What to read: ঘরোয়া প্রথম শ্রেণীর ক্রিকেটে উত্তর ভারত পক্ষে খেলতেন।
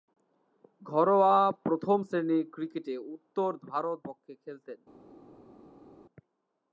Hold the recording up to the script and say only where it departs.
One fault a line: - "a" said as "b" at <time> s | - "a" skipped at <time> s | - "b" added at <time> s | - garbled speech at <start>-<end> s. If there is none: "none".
none